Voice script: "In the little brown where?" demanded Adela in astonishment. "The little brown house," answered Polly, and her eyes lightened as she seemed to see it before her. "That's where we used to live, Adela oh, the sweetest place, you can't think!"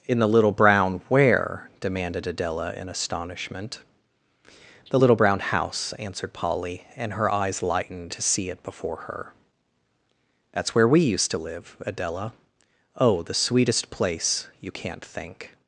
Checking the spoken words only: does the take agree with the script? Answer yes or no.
no